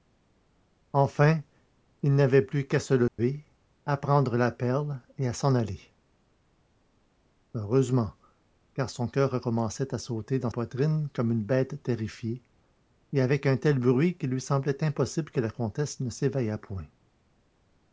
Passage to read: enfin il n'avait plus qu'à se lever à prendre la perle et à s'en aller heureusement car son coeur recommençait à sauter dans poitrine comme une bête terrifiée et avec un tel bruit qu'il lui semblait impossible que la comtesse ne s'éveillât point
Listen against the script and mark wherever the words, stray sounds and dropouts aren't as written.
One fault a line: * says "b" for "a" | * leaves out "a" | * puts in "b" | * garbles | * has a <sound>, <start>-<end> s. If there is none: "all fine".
* has a dropout, 3.1-3.2 s